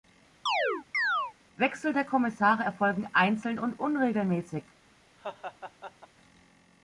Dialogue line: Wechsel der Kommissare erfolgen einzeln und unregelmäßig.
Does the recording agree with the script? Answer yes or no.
yes